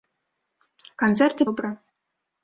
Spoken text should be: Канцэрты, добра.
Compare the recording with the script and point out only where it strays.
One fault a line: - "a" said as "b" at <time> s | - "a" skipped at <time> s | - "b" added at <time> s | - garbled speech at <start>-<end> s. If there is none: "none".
none